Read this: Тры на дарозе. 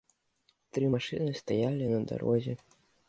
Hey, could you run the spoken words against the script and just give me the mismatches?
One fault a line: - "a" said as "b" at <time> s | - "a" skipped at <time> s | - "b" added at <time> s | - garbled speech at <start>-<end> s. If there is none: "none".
- "машыны стаялі" added at 0.9 s